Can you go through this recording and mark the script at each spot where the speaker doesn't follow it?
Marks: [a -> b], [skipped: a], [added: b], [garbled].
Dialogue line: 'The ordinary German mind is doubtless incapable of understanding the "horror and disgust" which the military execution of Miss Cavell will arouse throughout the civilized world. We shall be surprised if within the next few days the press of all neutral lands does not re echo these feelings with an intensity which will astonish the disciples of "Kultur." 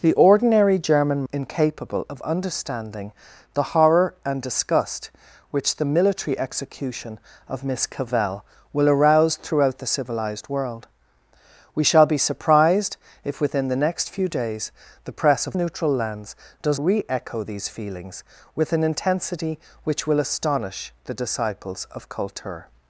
'The ordinary German [skipped: mind is doubtless] incapable of understanding the "horror and disgust" which the military execution of Miss Cavell will arouse throughout the civilized world. We shall be surprised if within the next few days the press of [skipped: all] neutral lands does [skipped: not] re echo these feelings with an intensity which will astonish the disciples of "Kultur."